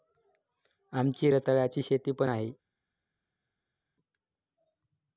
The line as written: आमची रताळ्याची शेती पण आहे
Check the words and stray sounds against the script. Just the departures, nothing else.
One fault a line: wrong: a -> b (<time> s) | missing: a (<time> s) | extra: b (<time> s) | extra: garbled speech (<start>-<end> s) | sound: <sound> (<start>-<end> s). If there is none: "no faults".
no faults